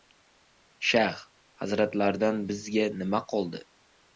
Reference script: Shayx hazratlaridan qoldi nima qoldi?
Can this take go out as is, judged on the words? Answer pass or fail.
fail